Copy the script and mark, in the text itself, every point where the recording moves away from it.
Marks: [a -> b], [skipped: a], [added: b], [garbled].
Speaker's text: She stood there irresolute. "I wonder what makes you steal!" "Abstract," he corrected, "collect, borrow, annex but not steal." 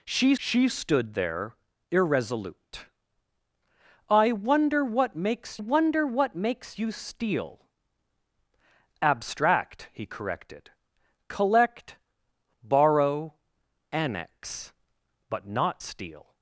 She [added: she] stood there irresolute. "I wonder what makes [added: wonder what makes] you steal!" "Abstract," he corrected, "collect, borrow, annex but not steal."